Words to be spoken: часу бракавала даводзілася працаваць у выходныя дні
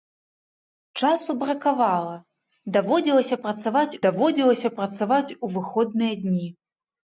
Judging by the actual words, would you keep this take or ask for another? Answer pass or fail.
fail